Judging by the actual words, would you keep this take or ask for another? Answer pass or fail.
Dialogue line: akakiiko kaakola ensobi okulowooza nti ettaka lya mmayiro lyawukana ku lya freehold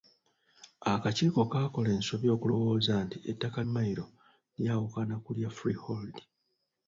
fail